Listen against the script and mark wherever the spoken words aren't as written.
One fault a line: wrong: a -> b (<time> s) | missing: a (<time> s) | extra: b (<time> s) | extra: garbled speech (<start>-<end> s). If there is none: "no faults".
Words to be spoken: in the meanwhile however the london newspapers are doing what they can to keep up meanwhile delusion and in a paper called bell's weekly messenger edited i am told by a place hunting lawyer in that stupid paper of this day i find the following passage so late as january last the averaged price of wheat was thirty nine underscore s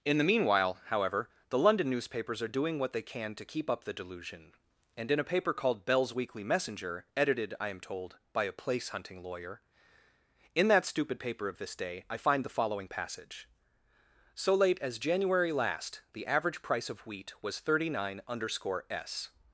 wrong: meanwhile -> the (3.8 s)
wrong: averaged -> average (16.3 s)